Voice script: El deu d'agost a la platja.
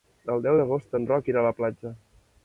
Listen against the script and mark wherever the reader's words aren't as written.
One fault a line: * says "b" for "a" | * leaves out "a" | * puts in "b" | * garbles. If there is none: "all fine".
* puts in "en Roc irà"